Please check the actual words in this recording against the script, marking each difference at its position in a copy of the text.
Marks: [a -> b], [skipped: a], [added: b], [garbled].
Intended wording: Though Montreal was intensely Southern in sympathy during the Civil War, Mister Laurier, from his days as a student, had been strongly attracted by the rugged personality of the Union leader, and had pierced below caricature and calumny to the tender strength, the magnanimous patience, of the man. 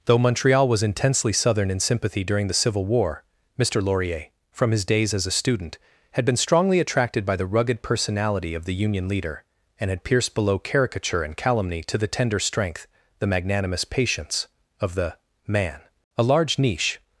Though Montreal was intensely Southern in sympathy during the Civil War, Mister Laurier, from his days as a student, had been strongly attracted by the rugged personality of the Union leader, and had pierced below caricature and calumny to the tender strength, the magnanimous patience, of the man. [added: A large niche]